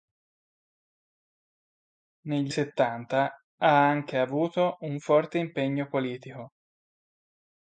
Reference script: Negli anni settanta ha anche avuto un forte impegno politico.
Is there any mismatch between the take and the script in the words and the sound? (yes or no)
yes